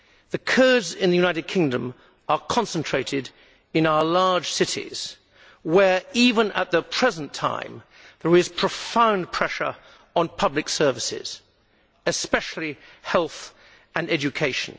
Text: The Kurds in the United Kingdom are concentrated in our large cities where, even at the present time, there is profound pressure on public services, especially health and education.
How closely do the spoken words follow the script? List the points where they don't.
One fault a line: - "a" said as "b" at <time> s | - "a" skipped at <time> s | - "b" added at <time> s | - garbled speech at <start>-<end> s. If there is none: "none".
none